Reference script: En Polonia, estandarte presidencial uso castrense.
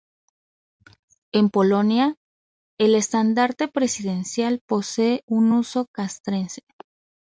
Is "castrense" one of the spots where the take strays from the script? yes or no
no